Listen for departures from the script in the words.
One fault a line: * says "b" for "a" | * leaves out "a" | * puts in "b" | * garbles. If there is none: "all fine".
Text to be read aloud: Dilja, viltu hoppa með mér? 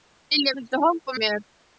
* leaves out "með"